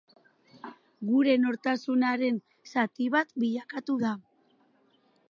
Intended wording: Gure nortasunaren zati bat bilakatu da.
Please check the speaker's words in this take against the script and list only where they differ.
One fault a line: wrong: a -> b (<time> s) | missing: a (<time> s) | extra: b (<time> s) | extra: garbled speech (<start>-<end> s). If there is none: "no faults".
no faults